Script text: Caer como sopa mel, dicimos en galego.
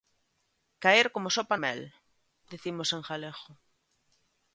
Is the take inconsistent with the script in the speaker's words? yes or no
no